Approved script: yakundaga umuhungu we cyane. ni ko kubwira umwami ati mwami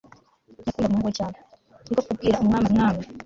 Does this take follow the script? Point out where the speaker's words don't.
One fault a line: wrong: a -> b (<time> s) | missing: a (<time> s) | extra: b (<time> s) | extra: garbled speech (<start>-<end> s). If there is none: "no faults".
missing: ati (2.6 s)